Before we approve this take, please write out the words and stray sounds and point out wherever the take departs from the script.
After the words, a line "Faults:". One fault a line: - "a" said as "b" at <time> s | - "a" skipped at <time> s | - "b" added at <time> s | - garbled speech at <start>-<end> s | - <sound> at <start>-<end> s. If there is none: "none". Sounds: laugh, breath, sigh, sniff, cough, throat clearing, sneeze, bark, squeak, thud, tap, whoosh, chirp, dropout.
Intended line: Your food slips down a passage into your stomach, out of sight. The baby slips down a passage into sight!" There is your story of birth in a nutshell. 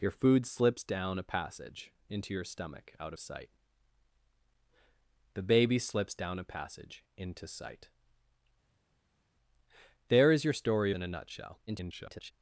Your food slips down a passage into your stomach, out sight. The baby slips down a passage into sight!" There is your story in a nutshell. [garbled]
Faults:
- "of" skipped at 3.1 s
- "of birth" skipped at 10.9 s
- garbled speech at 11.7-12.3 s